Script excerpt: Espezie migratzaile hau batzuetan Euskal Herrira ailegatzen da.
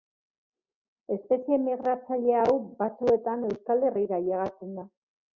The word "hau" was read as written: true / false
true